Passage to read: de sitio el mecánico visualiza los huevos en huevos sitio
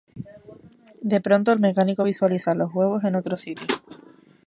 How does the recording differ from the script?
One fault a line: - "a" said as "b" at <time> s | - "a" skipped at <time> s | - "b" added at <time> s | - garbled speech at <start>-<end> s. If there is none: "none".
- "sitio" said as "pronto" at 1.2 s
- "huevos" said as "otro" at 3.2 s